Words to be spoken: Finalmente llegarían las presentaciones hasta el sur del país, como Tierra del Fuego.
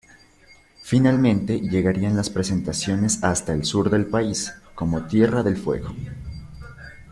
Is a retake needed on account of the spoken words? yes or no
no